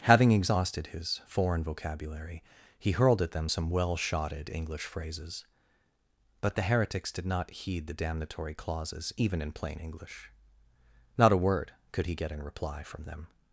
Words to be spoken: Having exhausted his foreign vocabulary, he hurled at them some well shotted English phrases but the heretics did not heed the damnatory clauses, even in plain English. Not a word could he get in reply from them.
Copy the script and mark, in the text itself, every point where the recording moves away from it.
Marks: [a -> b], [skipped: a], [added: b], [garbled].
Having exhausted his foreign vocabulary, he hurled at them some well shotted English phrases but the heretics did not heed the damnatory clauses, even in plain English. Not a word could he get in reply from them.